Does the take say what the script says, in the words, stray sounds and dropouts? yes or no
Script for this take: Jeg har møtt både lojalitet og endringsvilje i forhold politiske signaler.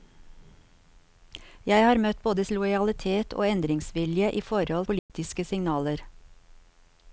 no